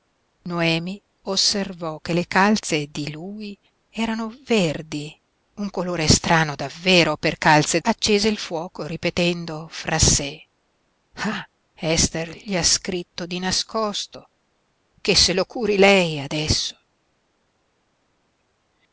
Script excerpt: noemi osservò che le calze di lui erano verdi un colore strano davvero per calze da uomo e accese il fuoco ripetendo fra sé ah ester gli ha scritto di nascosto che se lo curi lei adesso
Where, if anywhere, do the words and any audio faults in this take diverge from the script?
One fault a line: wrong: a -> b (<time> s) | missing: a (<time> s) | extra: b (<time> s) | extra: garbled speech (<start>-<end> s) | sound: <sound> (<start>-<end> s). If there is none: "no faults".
missing: da uomo e (7.8 s)